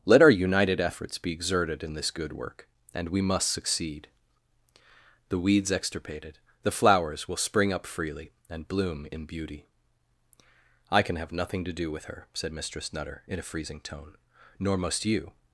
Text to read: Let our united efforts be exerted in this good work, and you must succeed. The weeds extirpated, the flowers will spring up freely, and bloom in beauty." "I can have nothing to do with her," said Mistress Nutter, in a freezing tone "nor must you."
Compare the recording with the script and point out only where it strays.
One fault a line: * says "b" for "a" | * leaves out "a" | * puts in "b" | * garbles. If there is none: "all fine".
* says "we" for "you"